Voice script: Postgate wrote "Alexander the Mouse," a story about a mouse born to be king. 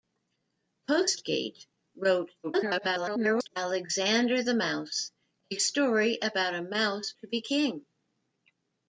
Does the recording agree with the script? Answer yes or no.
no